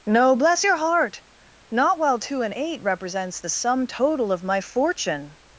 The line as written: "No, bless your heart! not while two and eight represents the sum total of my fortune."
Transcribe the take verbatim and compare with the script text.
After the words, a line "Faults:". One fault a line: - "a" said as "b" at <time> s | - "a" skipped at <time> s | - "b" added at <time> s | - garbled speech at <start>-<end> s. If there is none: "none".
"No, bless your heart! not while two and eight represents the sum total of my fortune."
Faults:
none